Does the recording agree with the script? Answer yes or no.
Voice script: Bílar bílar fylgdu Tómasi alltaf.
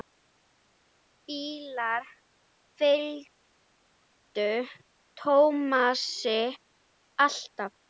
no